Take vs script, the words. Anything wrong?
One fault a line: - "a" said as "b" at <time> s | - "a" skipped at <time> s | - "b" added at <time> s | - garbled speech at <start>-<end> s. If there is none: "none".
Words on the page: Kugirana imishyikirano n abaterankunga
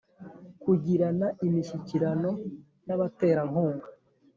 none